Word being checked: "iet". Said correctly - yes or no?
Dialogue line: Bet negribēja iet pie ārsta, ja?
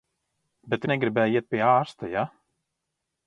yes